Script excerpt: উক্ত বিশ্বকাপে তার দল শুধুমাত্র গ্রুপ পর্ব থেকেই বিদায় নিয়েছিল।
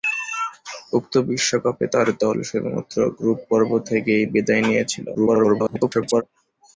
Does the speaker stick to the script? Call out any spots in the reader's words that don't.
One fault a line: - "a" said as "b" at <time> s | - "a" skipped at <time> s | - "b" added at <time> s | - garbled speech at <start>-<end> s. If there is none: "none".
- garbled speech at 5.1-6.2 s